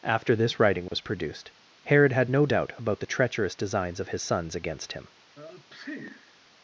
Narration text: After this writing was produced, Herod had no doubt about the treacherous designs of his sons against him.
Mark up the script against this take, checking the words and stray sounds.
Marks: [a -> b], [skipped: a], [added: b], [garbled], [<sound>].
After this writing was [dropout] produced, Herod had no doubt about the treacherous designs of his sons against him. [sneeze]